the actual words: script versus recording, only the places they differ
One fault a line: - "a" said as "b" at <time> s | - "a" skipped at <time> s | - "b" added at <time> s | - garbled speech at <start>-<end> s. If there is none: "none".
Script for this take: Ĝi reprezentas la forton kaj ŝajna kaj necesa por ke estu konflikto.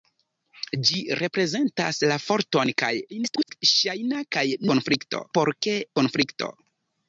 - garbled speech at 3.1-3.6 s
- "necesa" said as "konflikto" at 4.7 s
- "estu" skipped at 5.8 s